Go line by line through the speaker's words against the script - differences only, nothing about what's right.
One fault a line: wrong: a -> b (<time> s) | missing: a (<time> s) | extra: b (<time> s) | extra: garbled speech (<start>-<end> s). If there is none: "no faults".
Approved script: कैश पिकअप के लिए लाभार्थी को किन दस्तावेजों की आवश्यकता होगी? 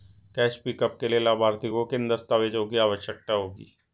no faults